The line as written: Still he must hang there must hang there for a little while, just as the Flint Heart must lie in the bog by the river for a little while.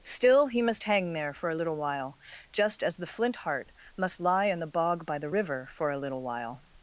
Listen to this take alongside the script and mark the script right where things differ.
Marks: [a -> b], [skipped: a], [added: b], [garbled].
Still he must hang there [skipped: must hang there] for a little while, just as the Flint Heart must lie in the bog by the river for a little while.